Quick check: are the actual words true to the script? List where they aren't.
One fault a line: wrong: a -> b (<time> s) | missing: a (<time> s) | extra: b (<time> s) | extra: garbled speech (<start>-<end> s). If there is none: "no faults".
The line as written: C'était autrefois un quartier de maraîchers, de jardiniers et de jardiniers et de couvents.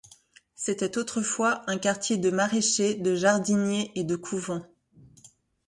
missing: jardiniers et de (4.2 s)